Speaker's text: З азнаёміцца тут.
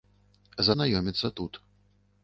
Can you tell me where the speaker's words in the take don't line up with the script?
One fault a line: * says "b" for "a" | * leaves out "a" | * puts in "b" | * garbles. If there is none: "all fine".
all fine